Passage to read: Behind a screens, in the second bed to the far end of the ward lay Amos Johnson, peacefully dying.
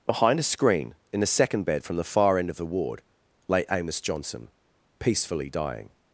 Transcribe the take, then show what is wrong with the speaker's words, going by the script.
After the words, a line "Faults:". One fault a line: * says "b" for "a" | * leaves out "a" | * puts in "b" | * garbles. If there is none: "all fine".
Behind a screen, in the second bed from the far end of the ward lay Amos Johnson, peacefully dying.
Faults:
* says "screen" for "screens"
* says "from" for "to"